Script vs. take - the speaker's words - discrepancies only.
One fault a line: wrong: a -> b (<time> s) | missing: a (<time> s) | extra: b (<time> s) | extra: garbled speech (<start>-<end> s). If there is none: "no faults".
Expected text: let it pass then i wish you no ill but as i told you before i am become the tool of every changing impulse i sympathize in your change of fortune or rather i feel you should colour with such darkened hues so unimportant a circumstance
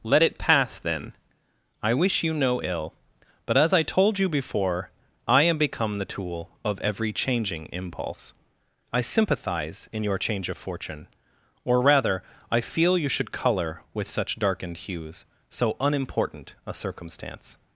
no faults